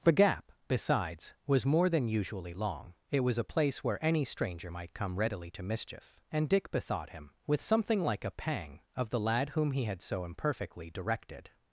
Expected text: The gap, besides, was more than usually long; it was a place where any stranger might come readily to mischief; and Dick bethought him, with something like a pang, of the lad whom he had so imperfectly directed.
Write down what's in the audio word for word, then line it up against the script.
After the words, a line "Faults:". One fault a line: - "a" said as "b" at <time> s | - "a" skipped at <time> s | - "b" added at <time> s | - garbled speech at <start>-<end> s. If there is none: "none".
The gap, besides, was more than usually long; it was a place where any stranger might come readily to mischief; and Dick bethought him, with something like a pang, of the lad whom he had so imperfectly directed.
Faults:
none